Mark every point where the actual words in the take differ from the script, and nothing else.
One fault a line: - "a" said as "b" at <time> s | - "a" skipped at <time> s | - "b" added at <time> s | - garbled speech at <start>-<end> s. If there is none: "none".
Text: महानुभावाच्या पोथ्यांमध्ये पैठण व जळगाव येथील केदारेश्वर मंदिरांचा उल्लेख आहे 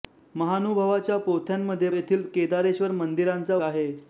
- "पैठण व जळगाव" skipped at 1.9 s
- "उल्लेख" skipped at 3.5 s